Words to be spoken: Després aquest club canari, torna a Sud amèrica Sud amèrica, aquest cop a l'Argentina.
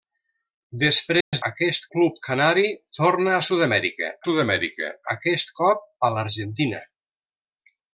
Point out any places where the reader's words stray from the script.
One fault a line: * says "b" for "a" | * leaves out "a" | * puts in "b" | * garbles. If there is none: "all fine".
all fine